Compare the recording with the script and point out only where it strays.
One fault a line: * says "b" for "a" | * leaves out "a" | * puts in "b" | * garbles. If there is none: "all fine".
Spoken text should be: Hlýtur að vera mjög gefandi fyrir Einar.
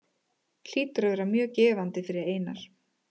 all fine